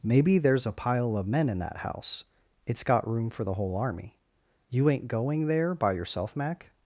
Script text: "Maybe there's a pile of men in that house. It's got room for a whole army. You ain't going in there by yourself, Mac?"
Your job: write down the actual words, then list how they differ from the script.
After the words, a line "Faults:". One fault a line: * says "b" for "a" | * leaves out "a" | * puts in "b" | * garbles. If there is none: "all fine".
"Maybe there's a pile of men in that house. It's got room for the whole army. You ain't going there by yourself, Mac?"
Faults:
* says "the" for "a"
* leaves out "in"